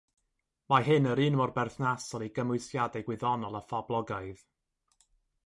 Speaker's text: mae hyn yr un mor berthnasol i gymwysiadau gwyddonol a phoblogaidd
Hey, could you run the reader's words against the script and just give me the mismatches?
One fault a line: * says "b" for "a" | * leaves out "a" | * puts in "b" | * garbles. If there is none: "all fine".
all fine